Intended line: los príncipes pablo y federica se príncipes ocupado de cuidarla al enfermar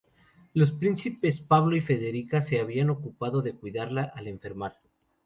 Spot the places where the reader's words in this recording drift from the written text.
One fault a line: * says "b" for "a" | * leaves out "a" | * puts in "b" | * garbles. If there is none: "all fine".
* says "habían" for "príncipes"